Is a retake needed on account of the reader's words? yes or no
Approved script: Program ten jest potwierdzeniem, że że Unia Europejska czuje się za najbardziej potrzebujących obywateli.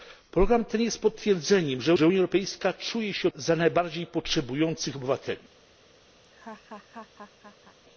no